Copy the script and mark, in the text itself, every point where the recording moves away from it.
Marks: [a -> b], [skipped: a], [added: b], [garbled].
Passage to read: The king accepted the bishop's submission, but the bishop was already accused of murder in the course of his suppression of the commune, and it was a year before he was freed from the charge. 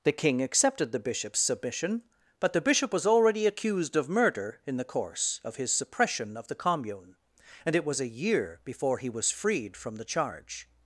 The king accepted the bishop's submission, but the bishop was already accused of murder in the course of his suppression of the commune, and it was a year before he was freed from the charge.